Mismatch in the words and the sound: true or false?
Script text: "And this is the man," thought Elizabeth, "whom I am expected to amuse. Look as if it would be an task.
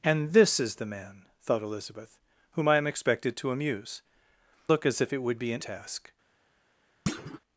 true